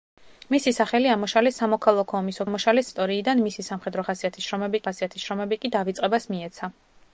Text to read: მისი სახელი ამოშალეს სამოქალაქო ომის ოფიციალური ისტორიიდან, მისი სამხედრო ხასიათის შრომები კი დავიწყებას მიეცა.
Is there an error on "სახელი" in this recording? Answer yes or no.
no